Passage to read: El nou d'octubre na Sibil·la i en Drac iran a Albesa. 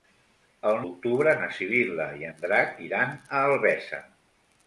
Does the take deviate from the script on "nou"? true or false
true